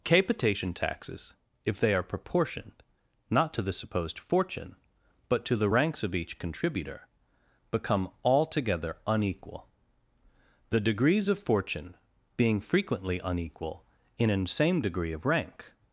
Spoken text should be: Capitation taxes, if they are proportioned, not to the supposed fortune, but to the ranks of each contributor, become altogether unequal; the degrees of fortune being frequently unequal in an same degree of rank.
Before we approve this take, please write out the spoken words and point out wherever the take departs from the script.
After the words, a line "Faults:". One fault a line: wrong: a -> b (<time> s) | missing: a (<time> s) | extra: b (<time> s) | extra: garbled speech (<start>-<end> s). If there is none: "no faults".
Capitation taxes, if they are proportioned, not to the supposed fortune, but to the ranks of each contributor, become altogether unequal; the degrees of fortune being frequently unequal in an same degree of rank.
Faults:
no faults